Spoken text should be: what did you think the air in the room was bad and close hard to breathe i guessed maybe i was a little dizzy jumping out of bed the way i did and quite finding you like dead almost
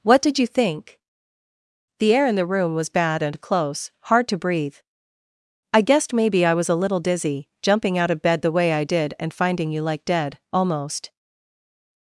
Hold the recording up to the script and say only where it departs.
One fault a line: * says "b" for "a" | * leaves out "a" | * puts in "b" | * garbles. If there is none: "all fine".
* leaves out "quite"